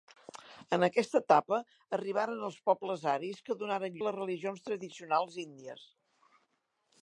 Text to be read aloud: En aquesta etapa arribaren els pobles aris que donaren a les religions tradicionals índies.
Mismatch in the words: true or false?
false